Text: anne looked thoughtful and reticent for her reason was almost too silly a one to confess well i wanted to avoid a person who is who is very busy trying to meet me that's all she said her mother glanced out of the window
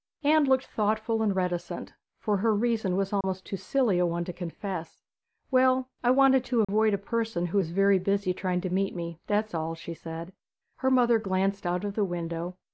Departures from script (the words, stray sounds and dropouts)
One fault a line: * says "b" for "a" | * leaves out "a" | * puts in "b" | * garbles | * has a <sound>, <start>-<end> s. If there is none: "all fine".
* has a dropout, 3.2-3.2 s
* has a dropout, 6.6-6.7 s
* leaves out "who is"